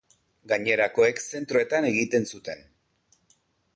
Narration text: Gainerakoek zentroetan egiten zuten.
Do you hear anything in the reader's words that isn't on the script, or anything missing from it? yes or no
no